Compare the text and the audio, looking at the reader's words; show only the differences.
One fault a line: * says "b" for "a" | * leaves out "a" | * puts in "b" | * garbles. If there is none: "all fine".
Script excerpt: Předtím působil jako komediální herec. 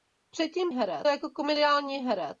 * says "herec" for "působil"